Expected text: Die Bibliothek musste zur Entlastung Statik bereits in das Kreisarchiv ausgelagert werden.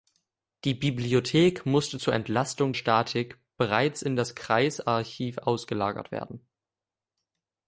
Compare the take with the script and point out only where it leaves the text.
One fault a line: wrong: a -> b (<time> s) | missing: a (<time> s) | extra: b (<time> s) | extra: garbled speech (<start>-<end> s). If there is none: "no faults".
no faults